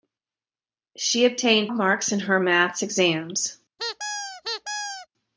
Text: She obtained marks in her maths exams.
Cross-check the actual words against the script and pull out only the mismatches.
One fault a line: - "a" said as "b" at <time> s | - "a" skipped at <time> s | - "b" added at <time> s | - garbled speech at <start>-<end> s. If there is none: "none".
none